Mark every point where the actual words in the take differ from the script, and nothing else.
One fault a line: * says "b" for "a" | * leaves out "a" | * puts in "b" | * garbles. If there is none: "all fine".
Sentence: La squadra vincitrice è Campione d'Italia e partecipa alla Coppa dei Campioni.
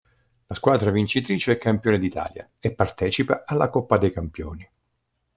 all fine